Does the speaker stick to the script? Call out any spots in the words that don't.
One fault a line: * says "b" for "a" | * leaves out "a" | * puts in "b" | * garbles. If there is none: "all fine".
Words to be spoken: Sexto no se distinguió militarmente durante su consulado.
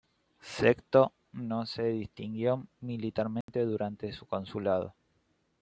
all fine